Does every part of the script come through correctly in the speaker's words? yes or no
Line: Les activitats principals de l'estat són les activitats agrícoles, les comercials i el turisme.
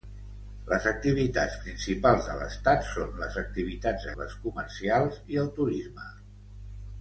no